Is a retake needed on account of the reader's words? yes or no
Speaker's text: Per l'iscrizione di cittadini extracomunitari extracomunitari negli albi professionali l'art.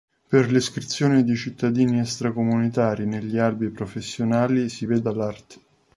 yes